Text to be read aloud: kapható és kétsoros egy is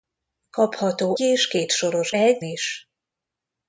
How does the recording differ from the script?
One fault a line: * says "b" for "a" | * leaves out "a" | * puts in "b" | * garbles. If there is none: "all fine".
all fine